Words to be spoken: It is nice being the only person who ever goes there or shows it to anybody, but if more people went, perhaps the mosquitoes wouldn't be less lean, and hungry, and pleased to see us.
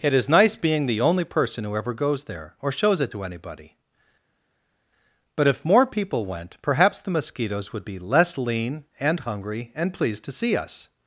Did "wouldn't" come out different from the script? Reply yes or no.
yes